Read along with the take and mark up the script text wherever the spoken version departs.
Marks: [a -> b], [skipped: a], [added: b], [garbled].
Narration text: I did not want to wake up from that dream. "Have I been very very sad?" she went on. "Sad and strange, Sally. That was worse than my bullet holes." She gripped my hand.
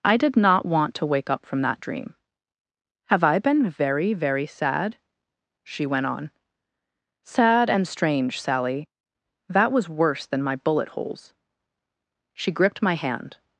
I did not want to wake up from that dream. "Have I been very very sad?" she went on. "Sad and strange, Sally. That was worse than my bullet holes." She gripped my hand.